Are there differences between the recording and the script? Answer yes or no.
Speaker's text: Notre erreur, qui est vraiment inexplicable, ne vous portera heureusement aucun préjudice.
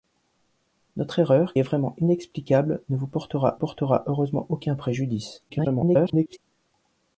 yes